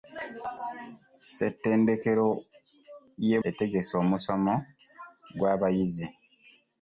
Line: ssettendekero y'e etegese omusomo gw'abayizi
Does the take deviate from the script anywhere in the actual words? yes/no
no